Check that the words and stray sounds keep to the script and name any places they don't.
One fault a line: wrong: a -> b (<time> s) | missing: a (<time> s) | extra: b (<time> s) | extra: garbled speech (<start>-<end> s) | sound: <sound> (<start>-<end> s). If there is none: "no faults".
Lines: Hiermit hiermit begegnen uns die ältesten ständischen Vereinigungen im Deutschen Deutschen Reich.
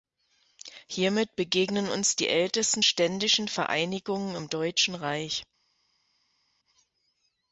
missing: hiermit (1.4 s)
missing: Deutschen (4.9 s)